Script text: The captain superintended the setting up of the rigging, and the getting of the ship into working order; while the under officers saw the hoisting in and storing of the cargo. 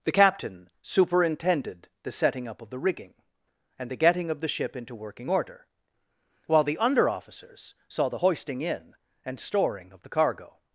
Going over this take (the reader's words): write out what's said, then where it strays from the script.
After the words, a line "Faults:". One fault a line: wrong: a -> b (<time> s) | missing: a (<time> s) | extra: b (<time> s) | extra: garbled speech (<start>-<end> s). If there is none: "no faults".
The captain superintended the setting up of the rigging, and the getting of the ship into working order; while the under officers saw the hoisting in and storing of the cargo.
Faults:
no faults